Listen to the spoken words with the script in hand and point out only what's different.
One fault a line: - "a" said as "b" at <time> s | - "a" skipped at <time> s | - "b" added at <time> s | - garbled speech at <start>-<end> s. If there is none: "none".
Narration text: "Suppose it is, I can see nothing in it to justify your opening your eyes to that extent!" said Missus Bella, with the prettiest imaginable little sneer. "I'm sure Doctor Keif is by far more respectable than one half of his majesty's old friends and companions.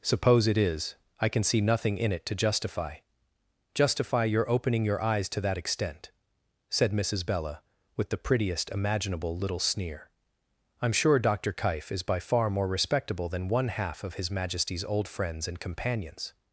- "justify" added at 3.7 s